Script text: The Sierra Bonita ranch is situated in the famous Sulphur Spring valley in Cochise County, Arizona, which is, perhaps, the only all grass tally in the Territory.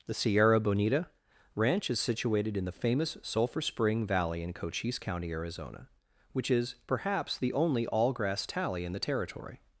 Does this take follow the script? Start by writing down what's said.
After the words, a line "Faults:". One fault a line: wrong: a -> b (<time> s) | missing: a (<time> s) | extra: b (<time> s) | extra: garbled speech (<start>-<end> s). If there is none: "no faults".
The Sierra Bonita ranch is situated in the famous Sulphur Spring valley in Cochise County, Arizona, which is, perhaps, the only all grass tally in the Territory.
Faults:
no faults